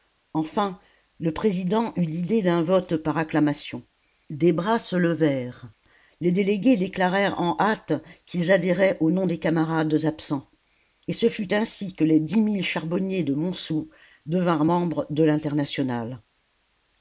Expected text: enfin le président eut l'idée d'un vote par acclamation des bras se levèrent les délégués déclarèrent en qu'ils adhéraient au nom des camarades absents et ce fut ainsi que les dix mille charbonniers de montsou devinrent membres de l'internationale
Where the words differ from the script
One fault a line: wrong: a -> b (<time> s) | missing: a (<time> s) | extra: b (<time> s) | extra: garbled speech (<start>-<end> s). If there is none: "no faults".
extra: hâte (7.6 s)